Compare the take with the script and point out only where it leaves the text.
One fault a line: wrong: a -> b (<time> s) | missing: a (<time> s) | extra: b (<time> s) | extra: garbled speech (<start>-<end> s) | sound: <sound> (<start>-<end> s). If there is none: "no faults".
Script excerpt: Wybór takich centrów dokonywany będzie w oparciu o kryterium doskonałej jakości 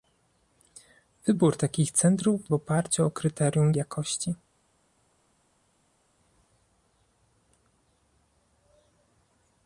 missing: dokonywany będzie (2.5 s)
missing: doskonałej (3.7 s)